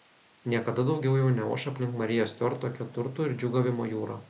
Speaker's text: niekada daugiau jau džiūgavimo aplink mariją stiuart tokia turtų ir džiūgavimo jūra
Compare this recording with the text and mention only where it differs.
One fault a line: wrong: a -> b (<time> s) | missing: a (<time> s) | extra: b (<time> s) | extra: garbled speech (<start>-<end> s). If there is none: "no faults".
wrong: džiūgavimo -> neoš (1.4 s)